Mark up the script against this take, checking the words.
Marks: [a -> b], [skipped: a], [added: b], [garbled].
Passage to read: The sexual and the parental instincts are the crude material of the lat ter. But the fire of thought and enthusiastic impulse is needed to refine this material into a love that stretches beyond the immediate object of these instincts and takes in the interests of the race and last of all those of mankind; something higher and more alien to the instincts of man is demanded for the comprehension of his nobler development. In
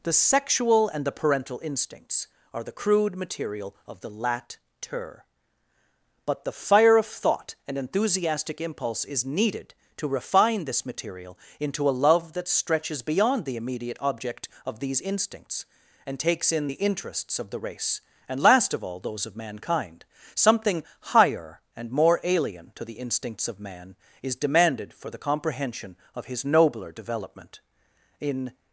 The sexual and the parental instincts are the crude material of the lat ter. But the fire of thought and enthusiastic impulse is needed to refine this material into a love that stretches beyond the immediate object of these instincts and takes in the interests of the race and last of all those of mankind; something higher and more alien to the instincts of man is demanded for the comprehension of his nobler development. In